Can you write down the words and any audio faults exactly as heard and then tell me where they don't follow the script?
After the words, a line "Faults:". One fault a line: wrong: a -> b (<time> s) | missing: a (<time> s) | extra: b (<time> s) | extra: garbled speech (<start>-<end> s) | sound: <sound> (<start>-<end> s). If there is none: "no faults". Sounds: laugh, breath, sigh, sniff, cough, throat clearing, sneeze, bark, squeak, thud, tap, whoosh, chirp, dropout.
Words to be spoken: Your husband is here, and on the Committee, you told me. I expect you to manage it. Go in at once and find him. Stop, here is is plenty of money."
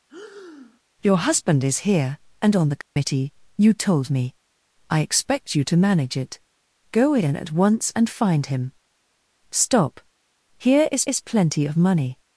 Your husband is here, and on the Committee, you told me. I expect you to manage it. Go in at once and find him. Stop, here is is plenty of money."
Faults:
sound: breath (0.1-0.8 s)
sound: dropout (2.8-3.0 s)